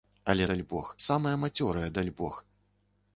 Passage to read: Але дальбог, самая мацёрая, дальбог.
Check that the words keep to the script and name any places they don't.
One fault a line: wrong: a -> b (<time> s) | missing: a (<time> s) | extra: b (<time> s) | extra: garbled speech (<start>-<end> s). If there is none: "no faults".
no faults